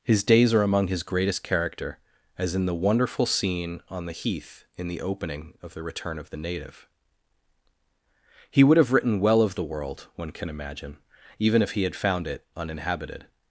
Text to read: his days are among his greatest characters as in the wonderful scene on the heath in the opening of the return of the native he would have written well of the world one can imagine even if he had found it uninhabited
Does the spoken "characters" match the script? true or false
false